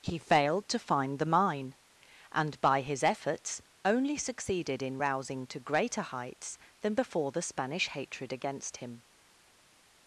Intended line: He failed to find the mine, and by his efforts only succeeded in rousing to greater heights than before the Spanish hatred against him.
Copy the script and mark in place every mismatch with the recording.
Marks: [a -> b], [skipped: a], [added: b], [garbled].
He failed to find the mine, and by his efforts only succeeded in rousing to greater heights than before the Spanish hatred against him.